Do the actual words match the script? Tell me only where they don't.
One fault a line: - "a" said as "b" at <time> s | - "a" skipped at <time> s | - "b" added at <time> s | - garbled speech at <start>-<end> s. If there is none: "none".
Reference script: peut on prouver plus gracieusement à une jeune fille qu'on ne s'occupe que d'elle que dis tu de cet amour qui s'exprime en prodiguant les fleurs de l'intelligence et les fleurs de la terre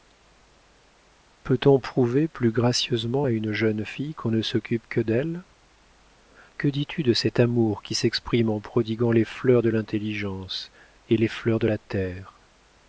none